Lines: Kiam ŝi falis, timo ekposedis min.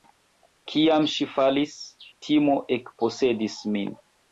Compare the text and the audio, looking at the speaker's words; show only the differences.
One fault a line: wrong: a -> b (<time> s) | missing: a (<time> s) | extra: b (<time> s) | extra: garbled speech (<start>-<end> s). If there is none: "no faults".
no faults